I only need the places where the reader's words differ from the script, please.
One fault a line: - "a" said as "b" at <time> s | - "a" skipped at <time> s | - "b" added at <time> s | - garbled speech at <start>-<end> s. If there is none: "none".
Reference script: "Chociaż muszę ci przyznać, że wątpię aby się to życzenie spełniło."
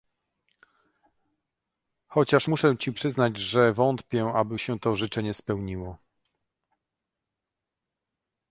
none